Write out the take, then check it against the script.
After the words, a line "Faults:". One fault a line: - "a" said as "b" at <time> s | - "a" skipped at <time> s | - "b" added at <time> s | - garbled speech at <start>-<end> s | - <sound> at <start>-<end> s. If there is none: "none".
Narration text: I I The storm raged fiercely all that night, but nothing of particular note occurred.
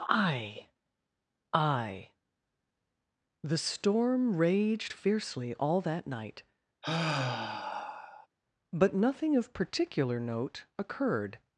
I I The storm raged fiercely all that night, but nothing of particular note occurred.
Faults:
- sigh at 6.8-8.3 s